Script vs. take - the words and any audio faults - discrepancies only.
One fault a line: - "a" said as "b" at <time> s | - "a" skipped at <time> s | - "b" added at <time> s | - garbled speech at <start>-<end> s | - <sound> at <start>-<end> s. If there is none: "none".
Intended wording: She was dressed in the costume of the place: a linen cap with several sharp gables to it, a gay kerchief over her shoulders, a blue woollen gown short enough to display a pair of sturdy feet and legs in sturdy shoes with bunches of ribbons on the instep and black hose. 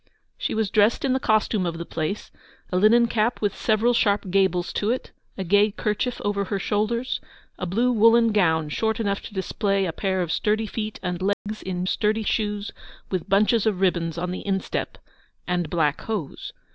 - dropout at 11.3-11.5 s